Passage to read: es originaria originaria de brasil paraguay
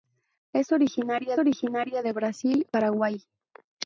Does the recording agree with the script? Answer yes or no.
yes